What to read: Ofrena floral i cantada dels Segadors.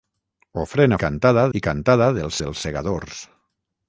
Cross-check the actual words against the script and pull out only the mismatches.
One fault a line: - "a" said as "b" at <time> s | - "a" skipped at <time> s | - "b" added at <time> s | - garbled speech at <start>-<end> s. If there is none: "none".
- "floral" said as "cantada" at 1.0 s
- "dels" added at 2.4 s